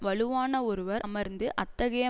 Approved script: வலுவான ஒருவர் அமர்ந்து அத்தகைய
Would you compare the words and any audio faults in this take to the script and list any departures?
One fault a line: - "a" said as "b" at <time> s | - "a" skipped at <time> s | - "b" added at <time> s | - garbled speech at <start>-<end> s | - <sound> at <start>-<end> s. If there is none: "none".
none